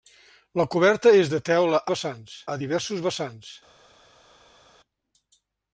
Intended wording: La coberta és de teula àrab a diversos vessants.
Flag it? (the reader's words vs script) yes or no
yes